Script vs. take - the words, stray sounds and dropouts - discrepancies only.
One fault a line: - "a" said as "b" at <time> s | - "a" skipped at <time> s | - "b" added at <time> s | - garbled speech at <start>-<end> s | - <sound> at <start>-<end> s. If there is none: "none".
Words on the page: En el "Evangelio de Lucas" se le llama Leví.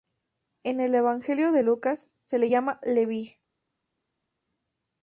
none